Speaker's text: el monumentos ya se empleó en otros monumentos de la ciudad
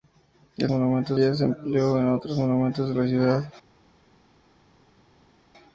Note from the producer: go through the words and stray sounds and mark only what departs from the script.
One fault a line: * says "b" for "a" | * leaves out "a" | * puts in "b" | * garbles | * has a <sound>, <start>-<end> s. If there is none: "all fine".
all fine